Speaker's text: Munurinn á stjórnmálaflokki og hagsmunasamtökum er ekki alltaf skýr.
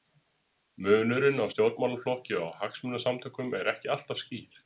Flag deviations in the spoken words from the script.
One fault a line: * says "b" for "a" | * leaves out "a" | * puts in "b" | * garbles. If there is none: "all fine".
all fine